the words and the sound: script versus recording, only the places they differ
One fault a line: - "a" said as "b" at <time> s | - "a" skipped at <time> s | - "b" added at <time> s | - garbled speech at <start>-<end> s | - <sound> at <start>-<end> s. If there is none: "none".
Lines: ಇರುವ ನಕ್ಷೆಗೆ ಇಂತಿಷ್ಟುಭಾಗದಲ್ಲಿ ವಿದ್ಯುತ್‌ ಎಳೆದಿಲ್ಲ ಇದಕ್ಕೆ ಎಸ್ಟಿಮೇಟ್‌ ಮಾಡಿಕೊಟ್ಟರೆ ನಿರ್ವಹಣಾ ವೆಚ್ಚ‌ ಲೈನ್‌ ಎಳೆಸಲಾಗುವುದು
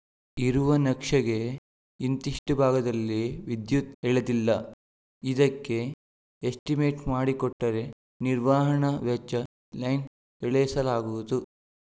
none